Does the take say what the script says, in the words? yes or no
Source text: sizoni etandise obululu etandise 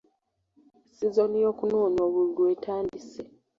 no